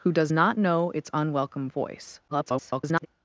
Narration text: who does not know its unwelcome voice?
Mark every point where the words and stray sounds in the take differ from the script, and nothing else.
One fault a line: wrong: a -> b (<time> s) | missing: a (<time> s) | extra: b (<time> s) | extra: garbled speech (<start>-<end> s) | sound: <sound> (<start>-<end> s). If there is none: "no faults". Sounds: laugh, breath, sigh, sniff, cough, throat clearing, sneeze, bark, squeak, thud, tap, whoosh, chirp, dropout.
extra: garbled speech (2.3-3.1 s)